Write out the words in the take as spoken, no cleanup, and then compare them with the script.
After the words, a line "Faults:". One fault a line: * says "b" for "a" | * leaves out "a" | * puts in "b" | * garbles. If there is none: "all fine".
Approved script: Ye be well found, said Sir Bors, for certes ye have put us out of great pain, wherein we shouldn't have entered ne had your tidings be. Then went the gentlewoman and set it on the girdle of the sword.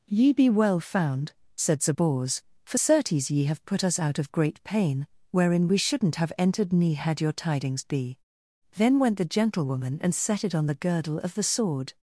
Ye be well found, said Sir Bors, for certes ye have put us out of great pain, wherein we shouldn't have entered ne had your tidings be. Then went the gentlewoman and set it on the girdle of the sword.
Faults:
all fine